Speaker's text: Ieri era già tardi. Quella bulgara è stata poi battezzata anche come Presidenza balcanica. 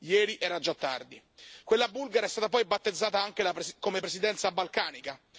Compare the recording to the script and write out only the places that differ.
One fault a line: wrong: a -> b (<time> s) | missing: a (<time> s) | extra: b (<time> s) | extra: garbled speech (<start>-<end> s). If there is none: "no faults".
no faults